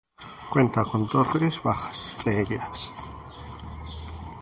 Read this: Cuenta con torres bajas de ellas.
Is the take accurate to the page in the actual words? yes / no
yes